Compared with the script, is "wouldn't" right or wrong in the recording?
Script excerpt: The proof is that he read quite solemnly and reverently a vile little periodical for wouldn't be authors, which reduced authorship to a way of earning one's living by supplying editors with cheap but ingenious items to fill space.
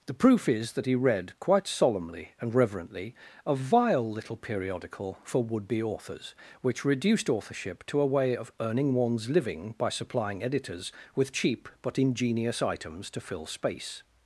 wrong